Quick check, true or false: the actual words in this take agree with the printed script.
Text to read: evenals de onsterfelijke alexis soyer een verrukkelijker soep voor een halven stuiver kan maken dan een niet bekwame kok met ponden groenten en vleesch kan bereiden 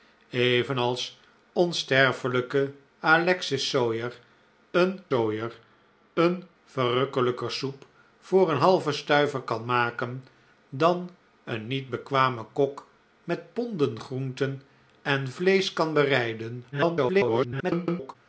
false